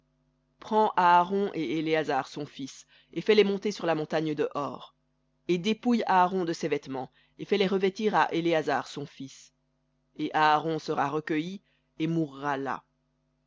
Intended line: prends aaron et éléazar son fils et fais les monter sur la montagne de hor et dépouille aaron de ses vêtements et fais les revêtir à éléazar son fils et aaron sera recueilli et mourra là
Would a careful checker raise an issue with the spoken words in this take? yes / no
no